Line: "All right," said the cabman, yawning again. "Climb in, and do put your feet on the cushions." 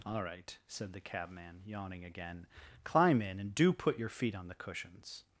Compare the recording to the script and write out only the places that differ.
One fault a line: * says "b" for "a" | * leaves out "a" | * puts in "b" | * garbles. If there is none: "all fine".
all fine